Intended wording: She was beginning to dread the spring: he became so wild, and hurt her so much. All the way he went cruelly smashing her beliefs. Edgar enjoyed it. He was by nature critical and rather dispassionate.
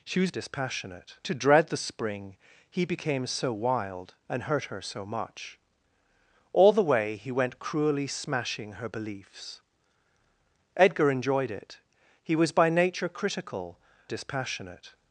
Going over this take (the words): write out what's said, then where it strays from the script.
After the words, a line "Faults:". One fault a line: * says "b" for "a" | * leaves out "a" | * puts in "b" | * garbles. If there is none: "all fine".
She was dispassionate to dread the spring: he became so wild, and hurt her so much. All the way he went cruelly smashing her beliefs. Edgar enjoyed it. He was by nature critical dispassionate.
Faults:
* says "dispassionate" for "beginning"
* leaves out "and rather"